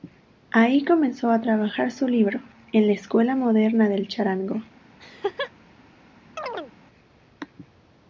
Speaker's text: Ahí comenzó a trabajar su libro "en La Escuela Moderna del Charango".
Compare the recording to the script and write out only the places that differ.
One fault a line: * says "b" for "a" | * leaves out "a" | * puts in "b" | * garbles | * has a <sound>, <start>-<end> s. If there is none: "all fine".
* has a laugh, 5.0-5.5 s
* has a chirp, 6.4-6.7 s